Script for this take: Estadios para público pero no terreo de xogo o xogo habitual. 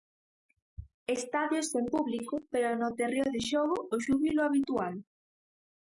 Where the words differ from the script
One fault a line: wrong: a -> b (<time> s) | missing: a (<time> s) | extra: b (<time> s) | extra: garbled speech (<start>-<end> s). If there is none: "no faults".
wrong: para -> sen (1.7 s)
wrong: xogo -> xúbilo (4.0 s)